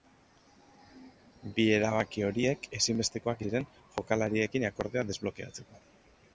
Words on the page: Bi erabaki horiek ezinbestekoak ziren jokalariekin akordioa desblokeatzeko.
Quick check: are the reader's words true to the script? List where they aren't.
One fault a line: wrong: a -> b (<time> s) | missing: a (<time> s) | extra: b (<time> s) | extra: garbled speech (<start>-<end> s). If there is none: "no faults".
no faults